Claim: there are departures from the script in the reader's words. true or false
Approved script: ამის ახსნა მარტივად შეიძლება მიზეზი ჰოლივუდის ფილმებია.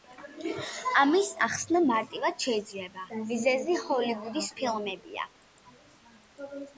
false